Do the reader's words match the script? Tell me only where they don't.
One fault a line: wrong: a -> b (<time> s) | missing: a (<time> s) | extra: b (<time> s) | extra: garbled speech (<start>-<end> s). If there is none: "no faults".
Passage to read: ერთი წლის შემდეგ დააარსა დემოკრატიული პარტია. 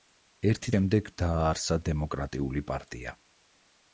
missing: წლის (0.7 s)